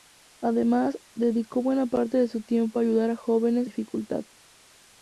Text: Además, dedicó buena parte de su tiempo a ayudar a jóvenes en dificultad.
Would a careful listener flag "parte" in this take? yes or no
no